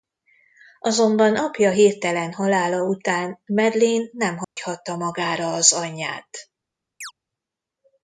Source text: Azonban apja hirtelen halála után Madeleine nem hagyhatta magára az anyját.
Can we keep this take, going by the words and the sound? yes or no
no